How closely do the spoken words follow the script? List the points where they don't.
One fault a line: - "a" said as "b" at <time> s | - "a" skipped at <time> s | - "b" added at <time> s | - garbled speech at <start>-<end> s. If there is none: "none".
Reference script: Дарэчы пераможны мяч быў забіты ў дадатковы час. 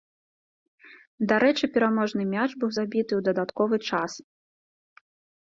none